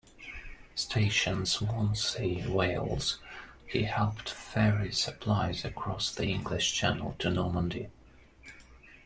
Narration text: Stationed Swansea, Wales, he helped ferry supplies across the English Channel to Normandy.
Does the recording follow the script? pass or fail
pass